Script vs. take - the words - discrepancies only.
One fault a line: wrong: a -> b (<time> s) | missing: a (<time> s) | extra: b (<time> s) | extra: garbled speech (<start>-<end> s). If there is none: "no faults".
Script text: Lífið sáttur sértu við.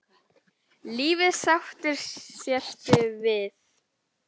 no faults